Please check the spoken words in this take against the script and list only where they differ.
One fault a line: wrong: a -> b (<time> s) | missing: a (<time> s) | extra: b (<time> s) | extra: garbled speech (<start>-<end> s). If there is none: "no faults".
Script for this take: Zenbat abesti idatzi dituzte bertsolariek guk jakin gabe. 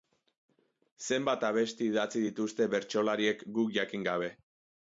no faults